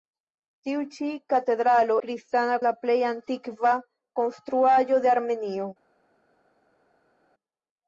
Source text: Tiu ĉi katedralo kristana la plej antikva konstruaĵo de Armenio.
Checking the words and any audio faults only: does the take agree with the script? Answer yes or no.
yes